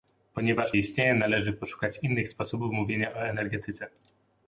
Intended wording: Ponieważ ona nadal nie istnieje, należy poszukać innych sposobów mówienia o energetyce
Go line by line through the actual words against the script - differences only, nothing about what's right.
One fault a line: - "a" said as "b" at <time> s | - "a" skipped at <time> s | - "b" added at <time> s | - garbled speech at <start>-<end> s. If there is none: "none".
- "ona nadal nie" skipped at 0.7 s